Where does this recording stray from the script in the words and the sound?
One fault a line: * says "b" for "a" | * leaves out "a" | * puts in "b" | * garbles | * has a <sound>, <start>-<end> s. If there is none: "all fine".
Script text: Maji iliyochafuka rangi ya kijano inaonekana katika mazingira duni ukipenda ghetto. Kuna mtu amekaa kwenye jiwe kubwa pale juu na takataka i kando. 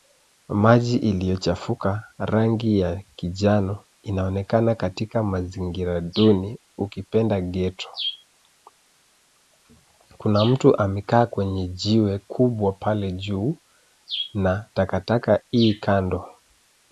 all fine